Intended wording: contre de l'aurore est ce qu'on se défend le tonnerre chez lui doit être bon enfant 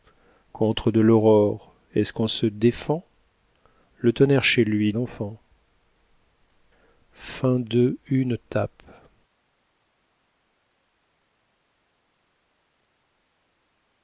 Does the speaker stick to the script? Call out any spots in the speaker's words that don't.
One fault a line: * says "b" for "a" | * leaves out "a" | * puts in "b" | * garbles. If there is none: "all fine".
* leaves out "doit être bon"